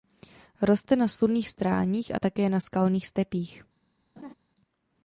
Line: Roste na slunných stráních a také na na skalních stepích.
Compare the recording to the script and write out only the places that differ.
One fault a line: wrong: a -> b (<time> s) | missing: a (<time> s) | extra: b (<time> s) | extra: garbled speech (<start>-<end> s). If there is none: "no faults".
missing: na (2.6 s)